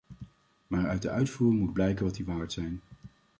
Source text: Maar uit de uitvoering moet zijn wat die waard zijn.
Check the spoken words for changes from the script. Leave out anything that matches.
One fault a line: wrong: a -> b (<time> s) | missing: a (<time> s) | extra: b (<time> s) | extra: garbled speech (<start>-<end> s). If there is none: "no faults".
wrong: zijn -> blijken (1.7 s)